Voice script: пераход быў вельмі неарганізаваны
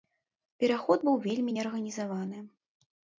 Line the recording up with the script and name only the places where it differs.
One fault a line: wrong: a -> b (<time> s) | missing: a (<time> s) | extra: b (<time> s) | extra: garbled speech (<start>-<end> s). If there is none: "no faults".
no faults